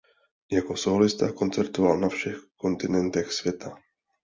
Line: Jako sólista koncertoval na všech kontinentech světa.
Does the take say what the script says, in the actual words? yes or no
yes